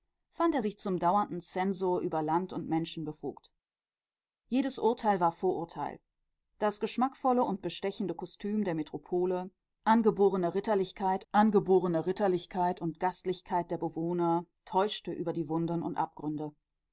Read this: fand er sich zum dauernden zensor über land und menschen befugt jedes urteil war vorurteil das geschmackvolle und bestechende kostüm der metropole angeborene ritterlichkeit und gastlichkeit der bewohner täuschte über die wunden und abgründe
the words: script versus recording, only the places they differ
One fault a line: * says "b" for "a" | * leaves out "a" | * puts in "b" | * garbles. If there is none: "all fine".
* puts in "angeborene ritterlichkeit"